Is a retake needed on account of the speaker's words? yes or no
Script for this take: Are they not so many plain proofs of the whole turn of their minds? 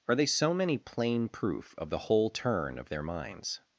yes